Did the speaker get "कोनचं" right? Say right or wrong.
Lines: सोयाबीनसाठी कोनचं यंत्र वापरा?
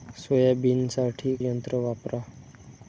wrong